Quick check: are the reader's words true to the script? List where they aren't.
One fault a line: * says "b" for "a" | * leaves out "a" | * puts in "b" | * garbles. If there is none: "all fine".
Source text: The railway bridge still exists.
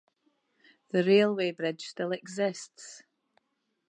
all fine